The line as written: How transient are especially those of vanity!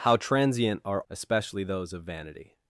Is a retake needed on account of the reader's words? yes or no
no